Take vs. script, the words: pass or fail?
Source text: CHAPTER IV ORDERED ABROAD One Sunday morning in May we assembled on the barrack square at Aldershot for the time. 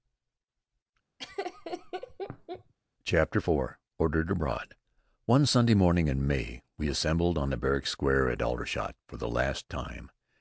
fail